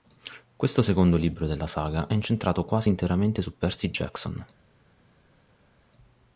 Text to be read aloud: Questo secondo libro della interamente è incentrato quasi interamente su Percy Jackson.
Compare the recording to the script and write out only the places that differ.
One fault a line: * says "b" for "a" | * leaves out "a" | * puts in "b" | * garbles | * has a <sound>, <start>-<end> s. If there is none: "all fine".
* says "saga" for "interamente"